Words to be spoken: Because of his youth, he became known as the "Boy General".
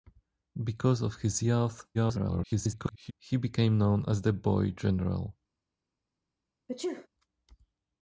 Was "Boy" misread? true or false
false